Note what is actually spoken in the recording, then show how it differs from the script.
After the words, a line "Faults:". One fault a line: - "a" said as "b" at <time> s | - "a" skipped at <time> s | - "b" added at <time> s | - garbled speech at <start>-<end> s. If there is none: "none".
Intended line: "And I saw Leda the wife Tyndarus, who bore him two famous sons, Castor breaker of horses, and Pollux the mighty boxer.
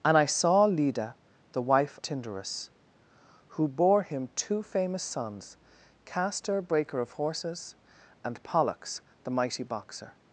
"And I saw Leda the wife Tyndarus, who bore him two famous sons, Castor breaker of horses, and Pollux the mighty boxer.
Faults:
none